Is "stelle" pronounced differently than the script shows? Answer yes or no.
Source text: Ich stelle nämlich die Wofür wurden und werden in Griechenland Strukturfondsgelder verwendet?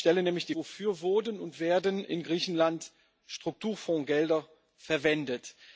no